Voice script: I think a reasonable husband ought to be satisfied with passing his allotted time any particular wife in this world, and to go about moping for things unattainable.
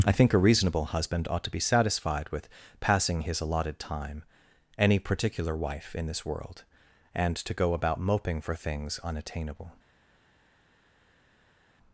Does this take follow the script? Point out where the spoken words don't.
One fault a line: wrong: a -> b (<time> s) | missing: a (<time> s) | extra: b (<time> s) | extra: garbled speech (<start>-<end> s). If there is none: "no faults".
no faults